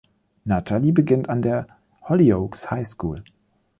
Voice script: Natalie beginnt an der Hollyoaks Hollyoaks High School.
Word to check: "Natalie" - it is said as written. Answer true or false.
true